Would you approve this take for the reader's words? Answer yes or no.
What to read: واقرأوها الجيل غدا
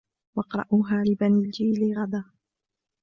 no